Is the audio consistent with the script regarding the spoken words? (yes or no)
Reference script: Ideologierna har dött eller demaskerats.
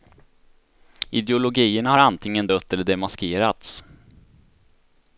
no